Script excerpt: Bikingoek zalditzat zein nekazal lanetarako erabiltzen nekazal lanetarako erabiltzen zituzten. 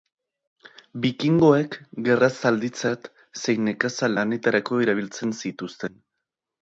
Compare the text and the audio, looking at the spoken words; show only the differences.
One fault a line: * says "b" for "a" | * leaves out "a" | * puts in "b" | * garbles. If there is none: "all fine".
* puts in "gerra"
* leaves out "nekazal lanetarako erabiltzen"